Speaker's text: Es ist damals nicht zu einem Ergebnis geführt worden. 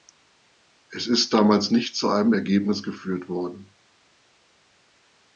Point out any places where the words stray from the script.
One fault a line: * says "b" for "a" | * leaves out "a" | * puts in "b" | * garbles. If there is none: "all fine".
all fine